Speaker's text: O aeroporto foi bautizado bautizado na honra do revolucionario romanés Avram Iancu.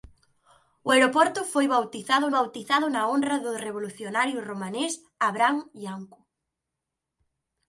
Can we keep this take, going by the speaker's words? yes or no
yes